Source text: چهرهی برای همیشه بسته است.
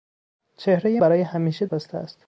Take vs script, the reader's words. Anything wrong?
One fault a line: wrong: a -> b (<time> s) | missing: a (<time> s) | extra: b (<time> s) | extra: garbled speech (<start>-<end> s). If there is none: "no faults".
no faults